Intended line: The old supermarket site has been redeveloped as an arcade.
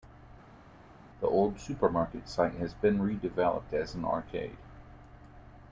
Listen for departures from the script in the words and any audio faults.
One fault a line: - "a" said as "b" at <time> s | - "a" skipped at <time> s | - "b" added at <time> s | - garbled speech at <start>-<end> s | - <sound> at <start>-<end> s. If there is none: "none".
none